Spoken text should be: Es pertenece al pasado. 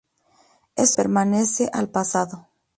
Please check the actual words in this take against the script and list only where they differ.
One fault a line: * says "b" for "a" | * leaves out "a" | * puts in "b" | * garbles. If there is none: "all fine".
all fine